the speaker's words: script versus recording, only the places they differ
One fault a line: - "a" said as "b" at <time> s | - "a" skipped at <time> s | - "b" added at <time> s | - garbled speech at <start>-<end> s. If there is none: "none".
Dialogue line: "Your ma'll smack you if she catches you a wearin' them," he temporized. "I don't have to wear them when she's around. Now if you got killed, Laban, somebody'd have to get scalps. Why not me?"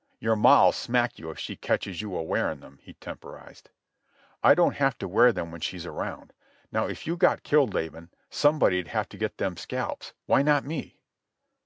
- "them" added at 9.4 s